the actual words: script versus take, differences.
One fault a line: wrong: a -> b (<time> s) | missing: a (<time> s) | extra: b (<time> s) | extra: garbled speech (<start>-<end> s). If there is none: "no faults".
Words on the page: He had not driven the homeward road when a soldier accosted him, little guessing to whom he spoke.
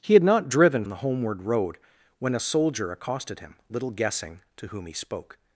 no faults